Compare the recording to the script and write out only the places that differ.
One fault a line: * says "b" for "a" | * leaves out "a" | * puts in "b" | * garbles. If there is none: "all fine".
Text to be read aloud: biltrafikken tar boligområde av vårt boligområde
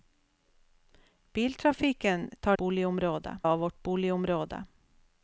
all fine